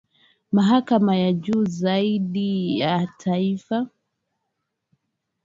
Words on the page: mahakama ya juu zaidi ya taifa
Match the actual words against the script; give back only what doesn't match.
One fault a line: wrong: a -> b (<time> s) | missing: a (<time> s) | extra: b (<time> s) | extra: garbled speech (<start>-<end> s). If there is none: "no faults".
no faults